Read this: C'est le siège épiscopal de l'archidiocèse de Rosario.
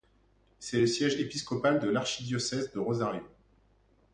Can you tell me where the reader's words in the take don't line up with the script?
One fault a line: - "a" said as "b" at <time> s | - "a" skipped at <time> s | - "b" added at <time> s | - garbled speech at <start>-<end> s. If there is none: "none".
none